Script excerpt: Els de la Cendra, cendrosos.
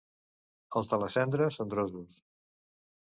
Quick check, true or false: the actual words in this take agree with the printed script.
true